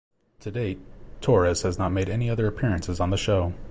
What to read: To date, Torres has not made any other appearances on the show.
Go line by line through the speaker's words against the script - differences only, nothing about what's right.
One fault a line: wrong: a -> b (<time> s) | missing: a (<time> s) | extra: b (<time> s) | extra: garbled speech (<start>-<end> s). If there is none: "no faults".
no faults